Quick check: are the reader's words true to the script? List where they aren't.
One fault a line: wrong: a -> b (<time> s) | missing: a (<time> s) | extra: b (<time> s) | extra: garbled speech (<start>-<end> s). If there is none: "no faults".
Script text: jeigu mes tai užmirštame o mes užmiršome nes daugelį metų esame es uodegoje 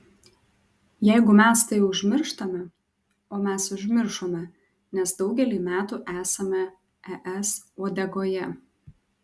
no faults